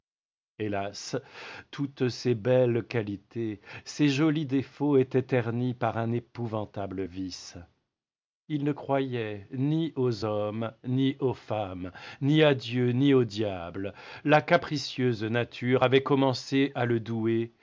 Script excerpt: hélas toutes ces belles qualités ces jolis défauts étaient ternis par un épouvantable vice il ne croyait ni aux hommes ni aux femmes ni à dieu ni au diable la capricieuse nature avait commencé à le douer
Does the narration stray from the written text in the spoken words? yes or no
no